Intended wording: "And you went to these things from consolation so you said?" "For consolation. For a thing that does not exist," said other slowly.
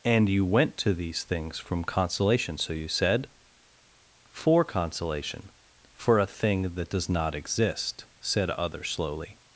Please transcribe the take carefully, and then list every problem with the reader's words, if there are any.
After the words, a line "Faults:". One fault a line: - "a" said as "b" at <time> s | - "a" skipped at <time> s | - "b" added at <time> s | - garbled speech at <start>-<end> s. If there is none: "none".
"And you went to these things from consolation so you said?" "For consolation. For a thing that does not exist," said other slowly.
Faults:
none